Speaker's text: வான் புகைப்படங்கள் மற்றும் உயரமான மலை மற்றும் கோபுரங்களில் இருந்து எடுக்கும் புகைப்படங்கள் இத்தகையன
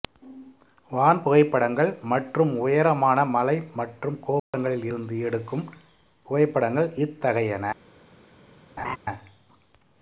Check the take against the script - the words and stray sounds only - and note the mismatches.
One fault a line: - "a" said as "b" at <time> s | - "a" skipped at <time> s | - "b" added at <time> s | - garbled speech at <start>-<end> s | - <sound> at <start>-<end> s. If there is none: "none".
- dropout at 4.4-4.5 s
- laugh at 8.8-9.0 s